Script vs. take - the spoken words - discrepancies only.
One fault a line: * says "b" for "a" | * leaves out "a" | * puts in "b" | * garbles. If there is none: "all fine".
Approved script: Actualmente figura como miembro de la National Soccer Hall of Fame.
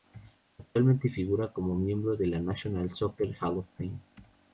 all fine